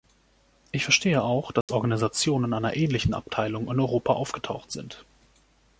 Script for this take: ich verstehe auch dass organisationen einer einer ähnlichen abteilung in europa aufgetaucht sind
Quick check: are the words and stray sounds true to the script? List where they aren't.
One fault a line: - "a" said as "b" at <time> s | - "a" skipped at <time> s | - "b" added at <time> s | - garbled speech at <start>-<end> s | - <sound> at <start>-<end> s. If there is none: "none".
- dropout at 1.6-1.7 s
- "einer" skipped at 2.8 s